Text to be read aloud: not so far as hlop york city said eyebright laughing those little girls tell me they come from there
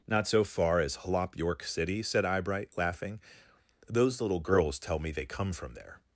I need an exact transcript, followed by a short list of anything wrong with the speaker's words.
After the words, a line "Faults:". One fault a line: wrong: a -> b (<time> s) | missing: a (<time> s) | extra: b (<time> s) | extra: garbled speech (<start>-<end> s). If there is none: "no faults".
not so far as hlop york city said eyebright laughing those little girls tell me they come from there
Faults:
no faults